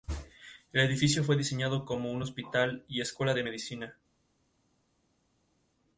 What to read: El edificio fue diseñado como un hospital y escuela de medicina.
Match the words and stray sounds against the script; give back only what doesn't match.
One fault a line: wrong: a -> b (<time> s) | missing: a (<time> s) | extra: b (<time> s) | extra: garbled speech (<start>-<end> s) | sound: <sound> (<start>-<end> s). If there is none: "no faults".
no faults